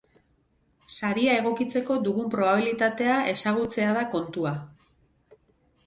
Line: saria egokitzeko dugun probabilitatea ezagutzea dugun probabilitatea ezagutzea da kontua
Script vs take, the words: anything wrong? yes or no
yes